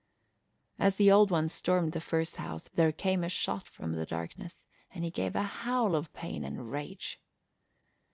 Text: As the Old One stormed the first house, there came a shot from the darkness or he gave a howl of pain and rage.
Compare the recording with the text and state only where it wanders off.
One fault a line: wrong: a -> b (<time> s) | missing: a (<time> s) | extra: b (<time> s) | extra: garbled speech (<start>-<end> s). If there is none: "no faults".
wrong: or -> and (4.9 s)